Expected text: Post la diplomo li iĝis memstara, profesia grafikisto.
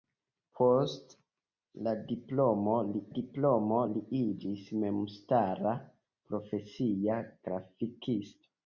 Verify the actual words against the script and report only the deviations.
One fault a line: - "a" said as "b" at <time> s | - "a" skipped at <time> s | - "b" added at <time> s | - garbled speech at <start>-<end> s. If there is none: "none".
- "diplomo li" added at 3.1 s